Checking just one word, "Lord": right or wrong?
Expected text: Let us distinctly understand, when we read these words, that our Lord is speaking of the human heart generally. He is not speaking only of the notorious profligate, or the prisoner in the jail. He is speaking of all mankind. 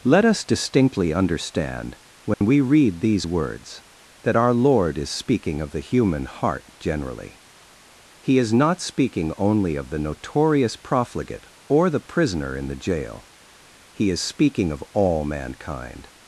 right